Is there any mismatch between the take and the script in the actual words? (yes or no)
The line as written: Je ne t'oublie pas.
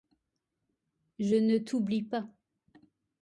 no